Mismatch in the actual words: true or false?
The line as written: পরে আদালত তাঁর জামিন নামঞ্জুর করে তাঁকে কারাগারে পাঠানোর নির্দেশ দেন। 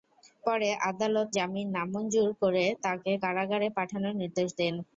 true